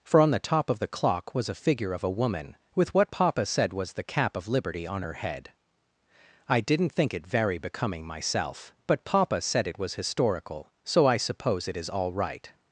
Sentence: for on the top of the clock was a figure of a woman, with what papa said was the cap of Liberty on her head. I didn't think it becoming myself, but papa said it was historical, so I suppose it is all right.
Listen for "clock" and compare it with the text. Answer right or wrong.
right